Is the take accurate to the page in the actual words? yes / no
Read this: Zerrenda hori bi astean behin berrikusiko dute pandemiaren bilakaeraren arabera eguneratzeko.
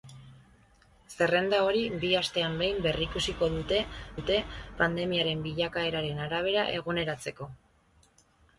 no